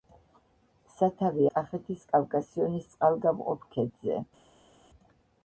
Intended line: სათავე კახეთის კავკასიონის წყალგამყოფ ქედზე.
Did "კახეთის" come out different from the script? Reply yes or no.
no